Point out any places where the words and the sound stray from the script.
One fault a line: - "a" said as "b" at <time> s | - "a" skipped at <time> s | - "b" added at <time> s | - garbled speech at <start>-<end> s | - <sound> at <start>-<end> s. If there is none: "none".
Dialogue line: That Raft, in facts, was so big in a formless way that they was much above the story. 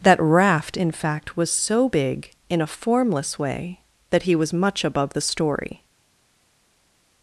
- "facts" said as "fact" at 0.9 s
- "they" said as "he" at 4.2 s